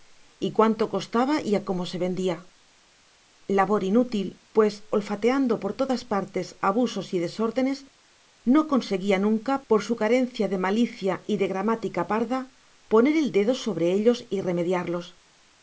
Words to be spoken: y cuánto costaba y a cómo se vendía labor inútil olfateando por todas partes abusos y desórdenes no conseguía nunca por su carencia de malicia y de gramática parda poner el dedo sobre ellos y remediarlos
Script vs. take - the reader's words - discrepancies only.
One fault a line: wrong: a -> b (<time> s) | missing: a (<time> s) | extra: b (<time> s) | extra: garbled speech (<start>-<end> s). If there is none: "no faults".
extra: pues (4.5 s)